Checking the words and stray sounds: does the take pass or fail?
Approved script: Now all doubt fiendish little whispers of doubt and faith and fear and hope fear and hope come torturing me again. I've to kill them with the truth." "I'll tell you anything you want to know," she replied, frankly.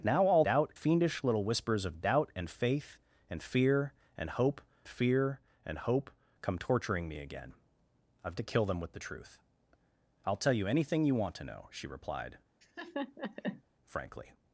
fail